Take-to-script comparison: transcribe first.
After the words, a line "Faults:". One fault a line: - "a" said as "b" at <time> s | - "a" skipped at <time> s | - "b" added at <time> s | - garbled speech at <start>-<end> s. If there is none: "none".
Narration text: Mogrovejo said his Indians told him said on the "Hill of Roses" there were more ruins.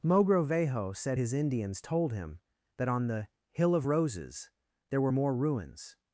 Mogrovejo said his Indians told him that on the "Hill of Roses" there were more ruins.
Faults:
- "said" said as "that" at 2.8 s